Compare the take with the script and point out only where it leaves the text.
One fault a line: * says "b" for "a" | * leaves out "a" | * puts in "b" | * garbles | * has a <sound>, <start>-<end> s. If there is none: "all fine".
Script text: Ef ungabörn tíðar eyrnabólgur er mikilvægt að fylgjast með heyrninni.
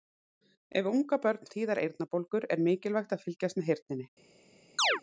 * has a chirp, 4.8-5.0 s